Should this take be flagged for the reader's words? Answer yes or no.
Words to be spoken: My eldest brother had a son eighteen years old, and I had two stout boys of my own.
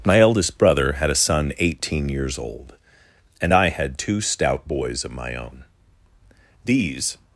yes